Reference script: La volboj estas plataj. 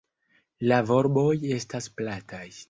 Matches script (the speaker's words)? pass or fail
pass